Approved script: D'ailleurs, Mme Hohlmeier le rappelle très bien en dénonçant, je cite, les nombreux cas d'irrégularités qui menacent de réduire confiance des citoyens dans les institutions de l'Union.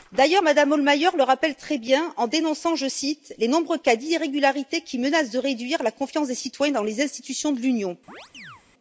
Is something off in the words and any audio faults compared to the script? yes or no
yes